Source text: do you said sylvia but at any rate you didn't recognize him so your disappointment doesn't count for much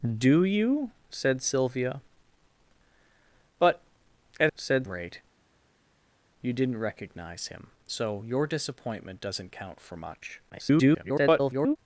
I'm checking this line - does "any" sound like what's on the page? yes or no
no